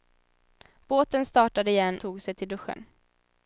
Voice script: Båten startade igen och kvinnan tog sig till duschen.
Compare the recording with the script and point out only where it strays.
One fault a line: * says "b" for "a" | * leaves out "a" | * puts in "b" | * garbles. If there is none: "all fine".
* leaves out "och kvinnan"